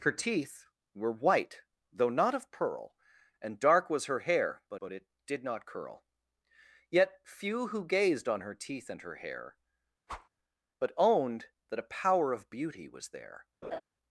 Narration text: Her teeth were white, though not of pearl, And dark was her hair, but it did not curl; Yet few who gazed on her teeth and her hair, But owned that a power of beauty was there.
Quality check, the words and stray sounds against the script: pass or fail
fail